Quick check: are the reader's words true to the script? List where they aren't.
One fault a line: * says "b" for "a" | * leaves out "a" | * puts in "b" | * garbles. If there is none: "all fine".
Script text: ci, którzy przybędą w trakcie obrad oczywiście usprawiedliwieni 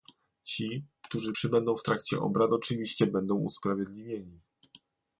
* puts in "będą"